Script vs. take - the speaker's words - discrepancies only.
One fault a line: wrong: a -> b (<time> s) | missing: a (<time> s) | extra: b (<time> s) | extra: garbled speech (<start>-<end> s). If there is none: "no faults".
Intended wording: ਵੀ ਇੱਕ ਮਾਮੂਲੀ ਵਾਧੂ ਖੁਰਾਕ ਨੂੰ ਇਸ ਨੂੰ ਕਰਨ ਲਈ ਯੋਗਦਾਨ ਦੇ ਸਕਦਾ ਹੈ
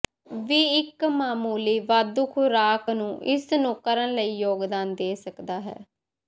no faults